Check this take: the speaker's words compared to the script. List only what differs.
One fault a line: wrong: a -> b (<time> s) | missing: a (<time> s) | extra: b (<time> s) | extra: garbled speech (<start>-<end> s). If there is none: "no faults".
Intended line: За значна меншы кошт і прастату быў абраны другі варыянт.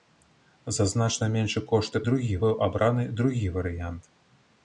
wrong: прастату -> другі (2.1 s)